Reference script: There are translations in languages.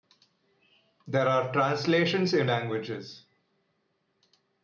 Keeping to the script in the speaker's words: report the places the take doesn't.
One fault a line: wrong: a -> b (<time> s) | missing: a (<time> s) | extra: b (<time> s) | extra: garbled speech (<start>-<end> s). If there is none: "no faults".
no faults